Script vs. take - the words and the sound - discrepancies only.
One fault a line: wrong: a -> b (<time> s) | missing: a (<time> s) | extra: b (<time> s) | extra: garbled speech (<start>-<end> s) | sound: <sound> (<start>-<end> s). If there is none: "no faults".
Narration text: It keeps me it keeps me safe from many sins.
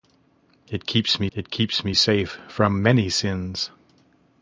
no faults